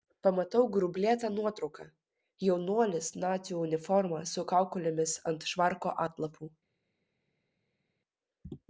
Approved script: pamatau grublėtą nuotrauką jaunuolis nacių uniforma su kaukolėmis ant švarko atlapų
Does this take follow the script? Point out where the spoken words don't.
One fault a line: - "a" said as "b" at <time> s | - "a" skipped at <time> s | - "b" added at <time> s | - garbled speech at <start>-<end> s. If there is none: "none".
none